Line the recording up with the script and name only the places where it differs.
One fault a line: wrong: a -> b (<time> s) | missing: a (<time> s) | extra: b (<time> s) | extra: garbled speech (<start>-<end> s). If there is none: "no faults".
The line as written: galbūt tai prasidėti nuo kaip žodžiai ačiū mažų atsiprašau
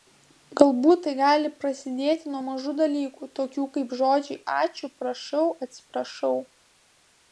extra: gali (1.2 s)
extra: mažų dalykų tokių (2.4 s)
wrong: mažų -> prašau (5.0 s)